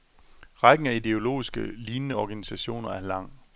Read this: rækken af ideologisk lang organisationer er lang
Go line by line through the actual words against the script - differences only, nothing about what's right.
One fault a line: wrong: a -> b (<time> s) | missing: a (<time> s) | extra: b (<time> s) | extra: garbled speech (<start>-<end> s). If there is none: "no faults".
wrong: lang -> lignende (1.6 s)